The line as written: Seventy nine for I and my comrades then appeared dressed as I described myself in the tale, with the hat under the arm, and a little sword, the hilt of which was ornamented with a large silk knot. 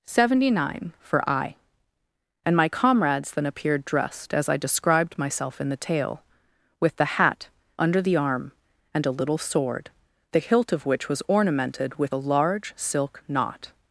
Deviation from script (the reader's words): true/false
false